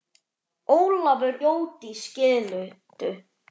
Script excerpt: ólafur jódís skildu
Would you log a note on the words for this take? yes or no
no